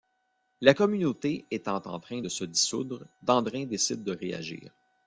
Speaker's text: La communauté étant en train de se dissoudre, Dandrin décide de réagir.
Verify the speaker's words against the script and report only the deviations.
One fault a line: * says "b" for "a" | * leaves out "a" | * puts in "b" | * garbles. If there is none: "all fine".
all fine